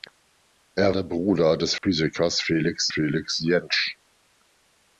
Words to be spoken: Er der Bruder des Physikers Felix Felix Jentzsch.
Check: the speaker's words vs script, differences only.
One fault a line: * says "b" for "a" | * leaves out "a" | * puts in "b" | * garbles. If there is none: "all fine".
all fine